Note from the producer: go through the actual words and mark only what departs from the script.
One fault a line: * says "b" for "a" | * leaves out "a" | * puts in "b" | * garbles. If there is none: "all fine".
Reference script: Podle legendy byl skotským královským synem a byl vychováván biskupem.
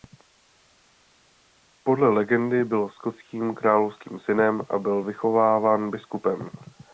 all fine